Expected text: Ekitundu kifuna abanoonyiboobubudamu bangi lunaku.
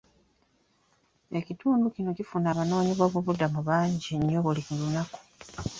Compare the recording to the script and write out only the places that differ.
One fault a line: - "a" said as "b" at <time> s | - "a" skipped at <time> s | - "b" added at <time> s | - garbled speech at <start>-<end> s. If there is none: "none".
- "kino" added at 1.9 s
- "nnyo buli" added at 4.2 s